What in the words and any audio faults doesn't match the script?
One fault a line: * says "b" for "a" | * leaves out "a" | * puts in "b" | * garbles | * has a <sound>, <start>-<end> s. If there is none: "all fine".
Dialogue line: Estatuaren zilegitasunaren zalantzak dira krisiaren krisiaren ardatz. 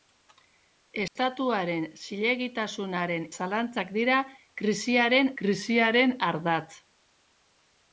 * has a dropout, 1.1-1.2 s